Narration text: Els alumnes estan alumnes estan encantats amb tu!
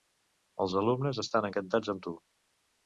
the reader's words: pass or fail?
fail